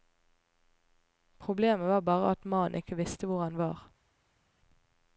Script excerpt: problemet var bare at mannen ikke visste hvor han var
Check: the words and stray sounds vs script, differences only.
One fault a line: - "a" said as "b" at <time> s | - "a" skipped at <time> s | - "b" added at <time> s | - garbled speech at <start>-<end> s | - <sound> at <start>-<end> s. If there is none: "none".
none